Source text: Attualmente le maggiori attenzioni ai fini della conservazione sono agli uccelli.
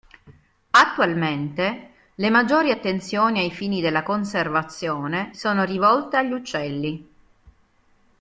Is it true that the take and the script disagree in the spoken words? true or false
true